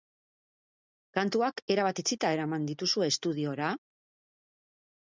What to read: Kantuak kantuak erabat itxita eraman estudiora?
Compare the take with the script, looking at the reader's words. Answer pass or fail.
fail